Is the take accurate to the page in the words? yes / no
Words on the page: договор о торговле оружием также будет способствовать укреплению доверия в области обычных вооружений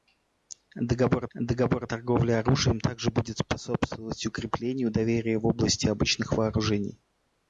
no